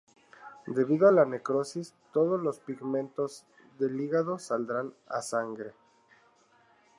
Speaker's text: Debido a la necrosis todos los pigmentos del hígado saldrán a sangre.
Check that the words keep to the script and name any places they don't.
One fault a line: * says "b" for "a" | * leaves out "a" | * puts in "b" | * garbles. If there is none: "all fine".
all fine